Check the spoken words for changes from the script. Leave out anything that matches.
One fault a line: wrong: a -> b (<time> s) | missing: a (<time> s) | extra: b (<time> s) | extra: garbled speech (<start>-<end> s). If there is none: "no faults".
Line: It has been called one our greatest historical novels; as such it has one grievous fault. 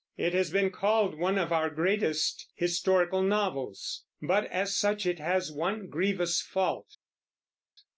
extra: of (1.4 s)
extra: but (4.2 s)